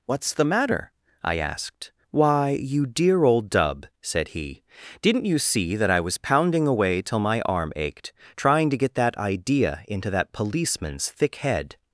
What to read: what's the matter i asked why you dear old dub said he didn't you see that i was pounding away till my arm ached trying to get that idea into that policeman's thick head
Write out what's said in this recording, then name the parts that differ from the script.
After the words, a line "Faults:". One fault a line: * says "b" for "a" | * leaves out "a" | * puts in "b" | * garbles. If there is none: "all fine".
what's the matter i asked why you dear old dub said he didn't you see that i was pounding away till my arm ached trying to get that idea into that policeman's thick head
Faults:
all fine